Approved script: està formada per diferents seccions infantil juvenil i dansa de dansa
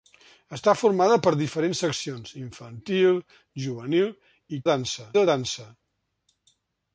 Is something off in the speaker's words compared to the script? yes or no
no